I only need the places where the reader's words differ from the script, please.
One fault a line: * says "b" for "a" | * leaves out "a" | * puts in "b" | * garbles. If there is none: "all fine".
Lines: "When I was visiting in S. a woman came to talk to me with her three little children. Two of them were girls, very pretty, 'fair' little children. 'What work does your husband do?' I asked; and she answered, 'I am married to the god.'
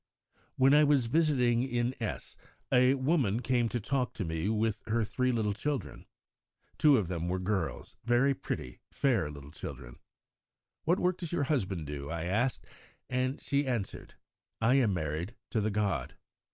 all fine